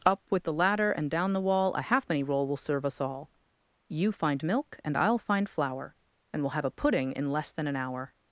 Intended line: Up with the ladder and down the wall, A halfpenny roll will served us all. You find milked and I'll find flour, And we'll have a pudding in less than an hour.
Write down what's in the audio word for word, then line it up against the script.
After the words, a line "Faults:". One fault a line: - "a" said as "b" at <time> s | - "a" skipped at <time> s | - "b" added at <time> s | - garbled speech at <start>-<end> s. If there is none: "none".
Up with the ladder and down the wall, A halfpenny roll will serve us all. You find milk and I'll find flour, And we'll have a pudding in less than an hour.
Faults:
- "served" said as "serve" at 2.6 s
- "milked" said as "milk" at 4.4 s